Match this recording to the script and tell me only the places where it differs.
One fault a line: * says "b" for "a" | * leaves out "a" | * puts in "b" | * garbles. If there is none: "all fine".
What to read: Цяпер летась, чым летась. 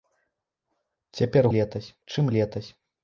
all fine